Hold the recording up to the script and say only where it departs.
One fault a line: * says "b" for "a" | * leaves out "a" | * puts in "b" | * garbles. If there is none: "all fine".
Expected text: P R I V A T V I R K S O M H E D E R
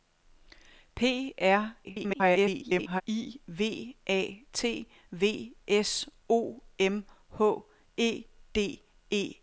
* garbles
* leaves out "I R K"